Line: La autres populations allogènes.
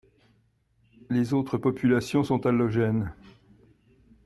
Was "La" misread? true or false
true